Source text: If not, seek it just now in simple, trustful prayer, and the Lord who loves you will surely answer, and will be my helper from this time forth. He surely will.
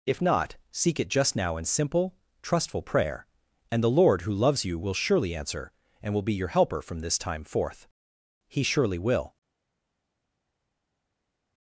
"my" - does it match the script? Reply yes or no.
no